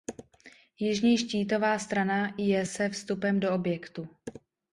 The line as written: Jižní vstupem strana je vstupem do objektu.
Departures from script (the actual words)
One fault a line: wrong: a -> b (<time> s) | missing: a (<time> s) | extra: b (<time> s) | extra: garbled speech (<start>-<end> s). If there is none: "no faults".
wrong: vstupem -> štítová (1.2 s)
extra: se (2.6 s)